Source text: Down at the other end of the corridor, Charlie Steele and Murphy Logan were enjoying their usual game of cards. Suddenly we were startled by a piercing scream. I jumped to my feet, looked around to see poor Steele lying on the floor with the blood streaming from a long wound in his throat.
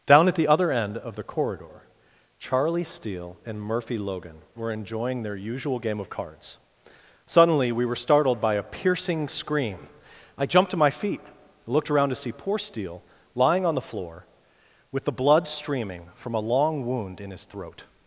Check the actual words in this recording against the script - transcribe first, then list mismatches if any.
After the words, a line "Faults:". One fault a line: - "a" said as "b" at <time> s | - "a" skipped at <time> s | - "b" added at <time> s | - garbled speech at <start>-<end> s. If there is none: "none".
Down at the other end of the corridor, Charlie Steele and Murphy Logan were enjoying their usual game of cards. Suddenly we were startled by a piercing scream. I jumped to my feet, looked around to see poor Steele lying on the floor with the blood streaming from a long wound in his throat.
Faults:
none